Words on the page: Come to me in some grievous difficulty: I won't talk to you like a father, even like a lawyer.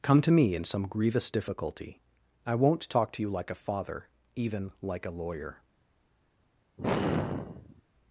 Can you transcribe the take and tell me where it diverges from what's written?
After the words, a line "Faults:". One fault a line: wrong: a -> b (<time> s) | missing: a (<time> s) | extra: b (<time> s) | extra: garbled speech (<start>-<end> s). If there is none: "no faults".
Come to me in some grievous difficulty: I won't talk to you like a father, even like a lawyer.
Faults:
no faults